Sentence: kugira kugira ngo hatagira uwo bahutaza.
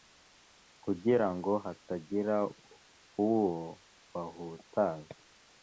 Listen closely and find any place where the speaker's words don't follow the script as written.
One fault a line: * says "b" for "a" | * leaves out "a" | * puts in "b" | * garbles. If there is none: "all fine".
* leaves out "kugira"